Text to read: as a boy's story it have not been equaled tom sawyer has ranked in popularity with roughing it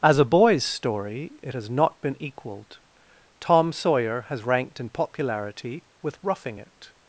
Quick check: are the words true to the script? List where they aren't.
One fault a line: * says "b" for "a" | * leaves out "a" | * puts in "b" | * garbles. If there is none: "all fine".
* says "has" for "have"